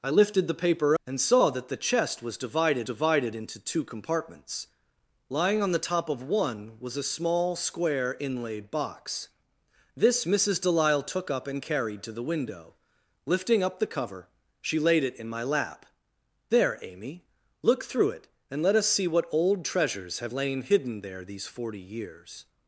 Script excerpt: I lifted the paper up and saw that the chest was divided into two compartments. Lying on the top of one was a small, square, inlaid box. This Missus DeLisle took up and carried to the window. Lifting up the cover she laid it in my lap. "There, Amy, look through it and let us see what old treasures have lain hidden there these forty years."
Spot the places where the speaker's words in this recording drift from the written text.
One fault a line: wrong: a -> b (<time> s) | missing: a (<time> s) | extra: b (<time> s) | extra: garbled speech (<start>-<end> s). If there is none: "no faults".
missing: up (1.0 s)
extra: divided (2.8 s)